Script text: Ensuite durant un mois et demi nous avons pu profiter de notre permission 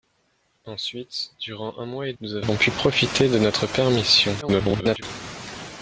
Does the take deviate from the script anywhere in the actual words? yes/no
yes